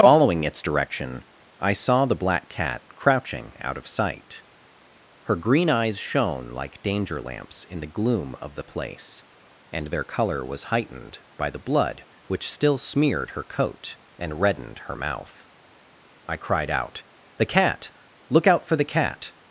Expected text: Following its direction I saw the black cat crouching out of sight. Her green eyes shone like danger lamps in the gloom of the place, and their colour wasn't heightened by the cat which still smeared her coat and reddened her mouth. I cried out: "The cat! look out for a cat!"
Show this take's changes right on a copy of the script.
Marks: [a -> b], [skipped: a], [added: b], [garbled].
Following its direction I saw the black cat crouching out of sight. Her green eyes shone like danger lamps in the gloom of the place, and their colour [wasn't -> was] heightened by the [cat -> blood] which still smeared her coat and reddened her mouth. I cried out: "The cat! look out for [a -> the] cat!"